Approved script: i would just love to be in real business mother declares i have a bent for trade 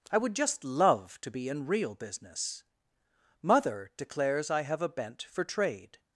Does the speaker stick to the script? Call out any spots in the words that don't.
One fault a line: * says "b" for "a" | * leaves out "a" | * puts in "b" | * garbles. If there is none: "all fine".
all fine